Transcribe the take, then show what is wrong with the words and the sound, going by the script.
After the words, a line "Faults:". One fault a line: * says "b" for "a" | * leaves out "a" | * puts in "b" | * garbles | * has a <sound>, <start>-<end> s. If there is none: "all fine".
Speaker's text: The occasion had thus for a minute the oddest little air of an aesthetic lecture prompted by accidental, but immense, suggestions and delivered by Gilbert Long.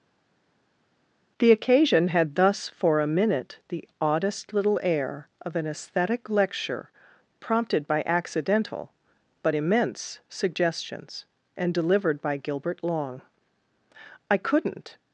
The occasion had thus for a minute the oddest little air of an aesthetic lecture prompted by accidental, but immense, suggestions and delivered by Gilbert Long. I couldn't
Faults:
* puts in "I couldn't"